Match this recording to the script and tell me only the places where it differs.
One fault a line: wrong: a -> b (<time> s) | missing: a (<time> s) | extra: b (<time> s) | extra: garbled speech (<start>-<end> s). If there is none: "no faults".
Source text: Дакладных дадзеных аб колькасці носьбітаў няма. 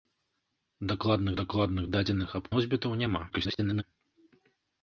extra: дакладных (1.4 s)
missing: колькасці (2.5 s)
extra: garbled speech (3.3-3.8 s)